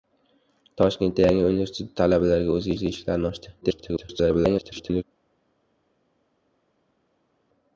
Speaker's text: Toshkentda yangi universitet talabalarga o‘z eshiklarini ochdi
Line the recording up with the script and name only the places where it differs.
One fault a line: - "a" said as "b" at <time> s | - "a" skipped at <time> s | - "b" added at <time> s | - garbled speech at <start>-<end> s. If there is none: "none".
- "o‘z" added at 2.7 s
- garbled speech at 3.6-5.0 s